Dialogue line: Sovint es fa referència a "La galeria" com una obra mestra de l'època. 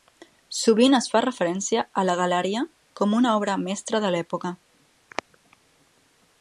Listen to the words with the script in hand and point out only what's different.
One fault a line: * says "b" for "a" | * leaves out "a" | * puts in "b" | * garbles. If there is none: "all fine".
all fine